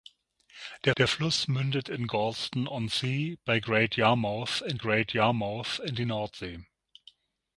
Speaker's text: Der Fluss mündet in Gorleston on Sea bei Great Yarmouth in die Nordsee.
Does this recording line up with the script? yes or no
no